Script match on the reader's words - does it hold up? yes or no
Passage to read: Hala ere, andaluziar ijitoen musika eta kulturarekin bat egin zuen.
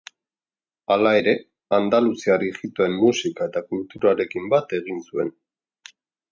yes